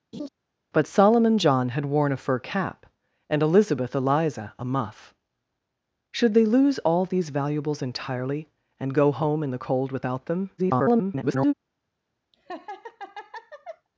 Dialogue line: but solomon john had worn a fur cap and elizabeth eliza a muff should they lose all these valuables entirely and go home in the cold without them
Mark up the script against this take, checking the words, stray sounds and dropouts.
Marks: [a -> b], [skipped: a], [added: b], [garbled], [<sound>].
[laugh] but solomon john had worn a fur cap and elizabeth eliza a muff should they lose all these valuables entirely and go home in the cold without them [garbled] [laugh]